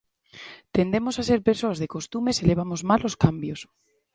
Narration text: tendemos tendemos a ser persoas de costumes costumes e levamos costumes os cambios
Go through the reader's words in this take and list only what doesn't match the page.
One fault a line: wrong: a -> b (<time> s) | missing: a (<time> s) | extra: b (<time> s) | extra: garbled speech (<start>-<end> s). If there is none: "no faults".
missing: tendemos (1.1 s)
missing: costumes (2.4 s)
wrong: costumes -> mal (2.9 s)